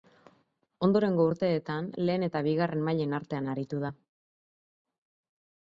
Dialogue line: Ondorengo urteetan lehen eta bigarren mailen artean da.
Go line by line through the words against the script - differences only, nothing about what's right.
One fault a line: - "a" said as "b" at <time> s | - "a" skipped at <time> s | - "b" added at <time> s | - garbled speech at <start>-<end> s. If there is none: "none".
- "aritu" added at 3.6 s